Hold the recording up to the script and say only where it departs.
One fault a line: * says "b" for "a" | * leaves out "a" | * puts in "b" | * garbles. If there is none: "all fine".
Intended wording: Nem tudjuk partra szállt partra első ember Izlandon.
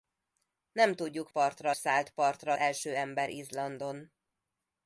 all fine